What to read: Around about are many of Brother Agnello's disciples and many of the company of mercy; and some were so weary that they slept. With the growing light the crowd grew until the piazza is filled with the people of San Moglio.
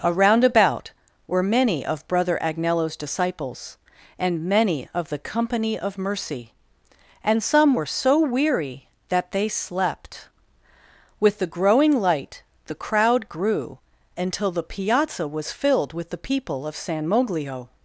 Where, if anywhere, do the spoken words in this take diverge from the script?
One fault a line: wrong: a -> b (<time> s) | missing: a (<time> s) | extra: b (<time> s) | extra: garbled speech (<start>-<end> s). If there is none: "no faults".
wrong: are -> were (1.3 s)
wrong: is -> was (15.3 s)